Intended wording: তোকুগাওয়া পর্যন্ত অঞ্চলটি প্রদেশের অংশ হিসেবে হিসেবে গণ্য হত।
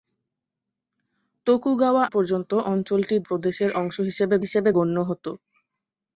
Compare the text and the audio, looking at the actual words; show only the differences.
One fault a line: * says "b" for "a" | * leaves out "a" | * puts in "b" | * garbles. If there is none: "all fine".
all fine